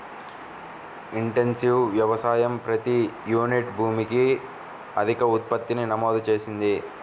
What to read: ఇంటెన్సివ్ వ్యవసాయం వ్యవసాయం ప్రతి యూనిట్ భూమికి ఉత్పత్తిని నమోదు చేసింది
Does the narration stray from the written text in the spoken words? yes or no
yes